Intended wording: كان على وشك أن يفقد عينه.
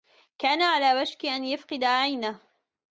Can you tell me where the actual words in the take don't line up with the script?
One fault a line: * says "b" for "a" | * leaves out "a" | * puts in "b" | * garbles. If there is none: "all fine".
all fine